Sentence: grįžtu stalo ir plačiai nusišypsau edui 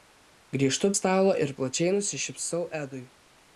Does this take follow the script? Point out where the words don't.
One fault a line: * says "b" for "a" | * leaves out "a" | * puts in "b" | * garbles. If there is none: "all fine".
all fine